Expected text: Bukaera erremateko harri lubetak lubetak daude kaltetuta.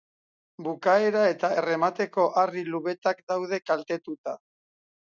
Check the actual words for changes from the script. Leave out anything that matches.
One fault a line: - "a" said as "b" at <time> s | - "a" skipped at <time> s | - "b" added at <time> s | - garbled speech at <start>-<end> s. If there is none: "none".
- "eta" added at 1.3 s
- "lubetak" skipped at 3.3 s